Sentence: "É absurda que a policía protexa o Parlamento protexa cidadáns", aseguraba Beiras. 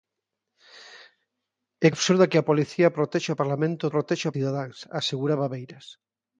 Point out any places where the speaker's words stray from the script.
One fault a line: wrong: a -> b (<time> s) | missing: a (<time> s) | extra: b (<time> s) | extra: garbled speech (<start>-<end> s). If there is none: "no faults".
no faults